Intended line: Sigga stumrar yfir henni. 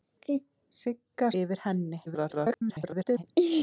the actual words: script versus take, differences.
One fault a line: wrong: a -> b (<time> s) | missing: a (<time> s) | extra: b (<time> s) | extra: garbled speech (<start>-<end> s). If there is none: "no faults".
missing: stumrar (1.3 s)
extra: garbled speech (2.1-3.2 s)